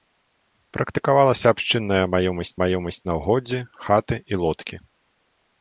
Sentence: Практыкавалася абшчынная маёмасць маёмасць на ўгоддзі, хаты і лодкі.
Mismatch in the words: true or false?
false